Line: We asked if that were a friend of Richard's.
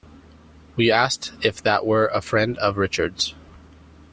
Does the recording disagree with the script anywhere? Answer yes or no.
no